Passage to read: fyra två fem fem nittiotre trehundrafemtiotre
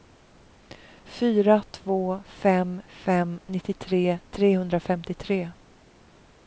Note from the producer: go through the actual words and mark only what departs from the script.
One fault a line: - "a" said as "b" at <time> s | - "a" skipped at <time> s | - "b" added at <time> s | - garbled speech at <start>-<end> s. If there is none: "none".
none